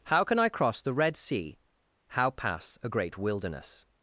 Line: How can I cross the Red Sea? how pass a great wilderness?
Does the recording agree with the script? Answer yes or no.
yes